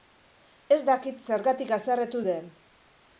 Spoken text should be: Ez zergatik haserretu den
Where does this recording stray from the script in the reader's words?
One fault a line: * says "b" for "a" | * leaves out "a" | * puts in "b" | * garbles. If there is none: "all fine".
* puts in "dakit"